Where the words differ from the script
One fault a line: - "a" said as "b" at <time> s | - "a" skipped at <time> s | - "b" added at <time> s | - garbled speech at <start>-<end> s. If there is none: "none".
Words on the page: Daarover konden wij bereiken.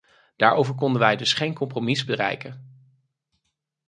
- "dus geen compromis" added at 1.1 s